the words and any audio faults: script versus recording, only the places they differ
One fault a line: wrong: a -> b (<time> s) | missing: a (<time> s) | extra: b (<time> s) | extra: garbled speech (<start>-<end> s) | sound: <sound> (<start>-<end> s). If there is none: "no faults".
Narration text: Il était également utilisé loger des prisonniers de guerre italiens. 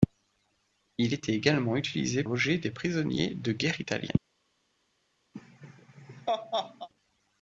sound: laugh (5.3-6.9 s)